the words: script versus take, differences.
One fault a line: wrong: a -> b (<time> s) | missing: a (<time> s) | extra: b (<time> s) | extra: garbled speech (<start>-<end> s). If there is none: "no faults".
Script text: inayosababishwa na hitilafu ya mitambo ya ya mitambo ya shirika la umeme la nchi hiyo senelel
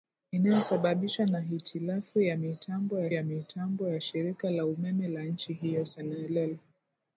no faults